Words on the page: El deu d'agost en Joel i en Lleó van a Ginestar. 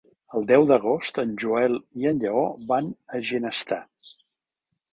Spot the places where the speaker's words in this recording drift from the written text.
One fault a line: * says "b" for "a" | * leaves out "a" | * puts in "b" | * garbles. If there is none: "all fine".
all fine